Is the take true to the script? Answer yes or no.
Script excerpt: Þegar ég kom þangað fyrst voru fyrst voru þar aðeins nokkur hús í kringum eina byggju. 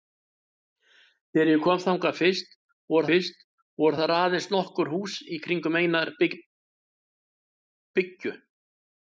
yes